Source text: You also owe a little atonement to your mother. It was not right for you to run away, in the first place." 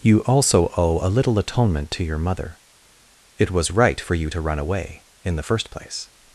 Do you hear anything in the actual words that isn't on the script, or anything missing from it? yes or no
yes